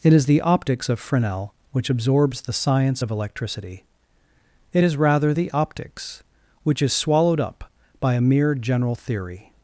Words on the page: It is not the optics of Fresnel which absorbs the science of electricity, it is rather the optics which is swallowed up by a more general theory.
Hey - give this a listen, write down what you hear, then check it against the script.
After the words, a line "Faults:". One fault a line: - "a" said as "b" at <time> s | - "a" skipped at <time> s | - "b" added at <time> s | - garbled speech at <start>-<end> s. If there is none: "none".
It is the optics of Fresnel which absorbs the science of electricity, it is rather the optics which is swallowed up by a mere general theory.
Faults:
- "not" skipped at 0.2 s
- "more" said as "mere" at 8.2 s